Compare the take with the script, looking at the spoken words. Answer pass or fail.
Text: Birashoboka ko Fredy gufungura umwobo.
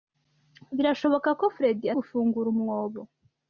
pass